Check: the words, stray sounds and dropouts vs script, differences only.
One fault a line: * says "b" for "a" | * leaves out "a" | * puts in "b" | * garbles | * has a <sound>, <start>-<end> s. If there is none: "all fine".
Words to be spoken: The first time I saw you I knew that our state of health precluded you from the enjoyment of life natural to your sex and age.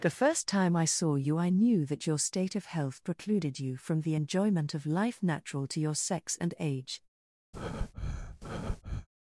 * says "your" for "our"
* has a breath, 7.5-9.1 s